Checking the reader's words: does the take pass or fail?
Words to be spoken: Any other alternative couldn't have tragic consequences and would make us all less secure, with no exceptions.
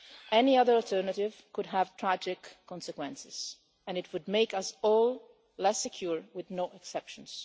fail